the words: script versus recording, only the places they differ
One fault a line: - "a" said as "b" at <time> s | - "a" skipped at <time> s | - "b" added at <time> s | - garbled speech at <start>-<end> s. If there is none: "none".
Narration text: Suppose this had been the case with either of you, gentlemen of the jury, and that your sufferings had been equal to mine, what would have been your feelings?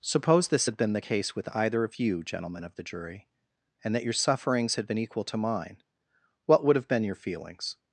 none